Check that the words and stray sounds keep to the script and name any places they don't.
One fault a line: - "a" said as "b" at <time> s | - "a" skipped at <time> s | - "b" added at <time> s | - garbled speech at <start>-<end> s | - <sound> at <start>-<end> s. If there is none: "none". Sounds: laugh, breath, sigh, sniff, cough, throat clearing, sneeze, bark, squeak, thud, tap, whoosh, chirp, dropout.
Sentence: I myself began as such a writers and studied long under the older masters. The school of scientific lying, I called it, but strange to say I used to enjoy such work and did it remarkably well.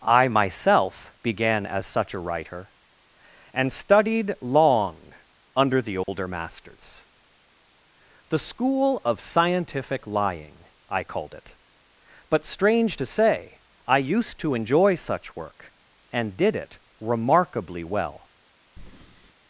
- "writers" said as "writer" at 2.2 s
- dropout at 6.0-6.1 s
- breath at 18.8-19.3 s